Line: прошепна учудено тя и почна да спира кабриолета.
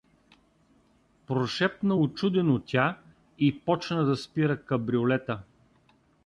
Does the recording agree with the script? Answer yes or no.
yes